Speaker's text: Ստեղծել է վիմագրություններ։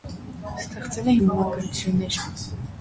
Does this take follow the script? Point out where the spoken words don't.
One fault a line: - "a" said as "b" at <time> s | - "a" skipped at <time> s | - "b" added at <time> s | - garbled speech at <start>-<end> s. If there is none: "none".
none